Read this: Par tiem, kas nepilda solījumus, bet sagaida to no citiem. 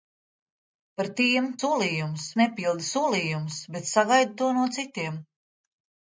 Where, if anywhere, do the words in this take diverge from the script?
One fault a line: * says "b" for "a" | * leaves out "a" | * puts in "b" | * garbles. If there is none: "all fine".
* says "solījumus" for "kas"